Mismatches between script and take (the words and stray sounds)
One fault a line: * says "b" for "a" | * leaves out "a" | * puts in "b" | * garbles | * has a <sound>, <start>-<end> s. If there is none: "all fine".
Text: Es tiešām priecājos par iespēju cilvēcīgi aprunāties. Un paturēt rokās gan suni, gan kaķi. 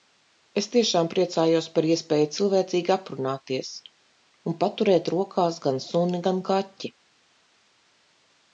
all fine